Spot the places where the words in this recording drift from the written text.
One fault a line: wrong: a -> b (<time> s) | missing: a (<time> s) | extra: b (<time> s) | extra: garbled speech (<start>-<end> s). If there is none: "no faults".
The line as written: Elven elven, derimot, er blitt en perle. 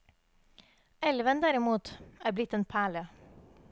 missing: elven (1.4 s)